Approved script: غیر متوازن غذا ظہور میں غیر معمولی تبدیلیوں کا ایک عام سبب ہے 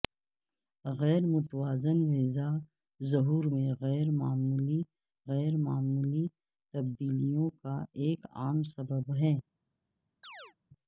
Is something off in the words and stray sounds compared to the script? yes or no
yes